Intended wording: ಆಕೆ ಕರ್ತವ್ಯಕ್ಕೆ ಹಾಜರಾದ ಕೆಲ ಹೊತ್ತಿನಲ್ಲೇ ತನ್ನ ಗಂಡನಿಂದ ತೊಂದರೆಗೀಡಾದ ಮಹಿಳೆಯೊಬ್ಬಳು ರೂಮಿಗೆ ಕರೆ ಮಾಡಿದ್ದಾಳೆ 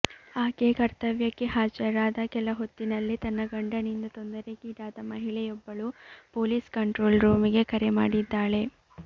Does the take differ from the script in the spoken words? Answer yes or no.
yes